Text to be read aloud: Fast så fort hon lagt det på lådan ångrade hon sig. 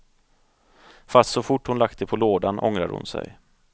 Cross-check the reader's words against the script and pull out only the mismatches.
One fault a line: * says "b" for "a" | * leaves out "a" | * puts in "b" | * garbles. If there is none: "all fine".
all fine